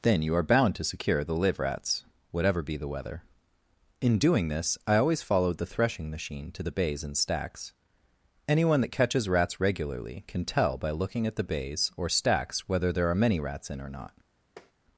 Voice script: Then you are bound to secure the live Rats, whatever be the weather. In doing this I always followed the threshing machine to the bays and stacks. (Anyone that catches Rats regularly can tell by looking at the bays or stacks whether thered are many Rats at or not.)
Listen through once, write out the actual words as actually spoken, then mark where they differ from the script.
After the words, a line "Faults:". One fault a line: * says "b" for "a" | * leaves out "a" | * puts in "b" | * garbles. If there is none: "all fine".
Then you are bound to secure the live Rats, whatever be the weather. In doing this I always followed the threshing machine to the bays and stacks. (Anyone that catches Rats regularly can tell by looking at the bays or stacks whether there are many Rats in or not.)
Faults:
* says "there" for "thered"
* says "in" for "at"